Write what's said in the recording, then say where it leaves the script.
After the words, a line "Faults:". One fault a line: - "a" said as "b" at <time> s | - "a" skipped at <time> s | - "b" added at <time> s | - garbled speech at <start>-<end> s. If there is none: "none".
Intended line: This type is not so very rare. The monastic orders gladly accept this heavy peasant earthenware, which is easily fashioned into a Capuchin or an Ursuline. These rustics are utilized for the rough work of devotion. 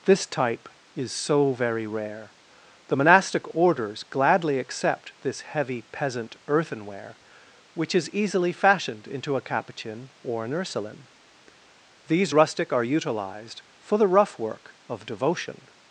This type is so very rare. The monastic orders gladly accept this heavy peasant earthenware, which is easily fashioned into a Capuchin or an Ursuline. These rustic are utilized for the rough work of devotion.
Faults:
- "not" skipped at 1.1 s
- "rustics" said as "rustic" at 12.3 s